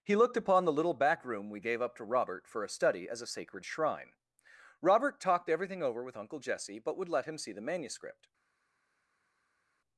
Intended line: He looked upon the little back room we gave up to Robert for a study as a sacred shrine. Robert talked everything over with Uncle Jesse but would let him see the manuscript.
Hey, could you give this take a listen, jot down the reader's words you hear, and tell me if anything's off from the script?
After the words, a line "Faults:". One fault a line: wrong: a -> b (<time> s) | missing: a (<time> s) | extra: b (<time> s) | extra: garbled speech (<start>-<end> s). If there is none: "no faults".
He looked upon the little back room we gave up to Robert for a study as a sacred shrine. Robert talked everything over with Uncle Jesse but would let him see the manuscript.
Faults:
no faults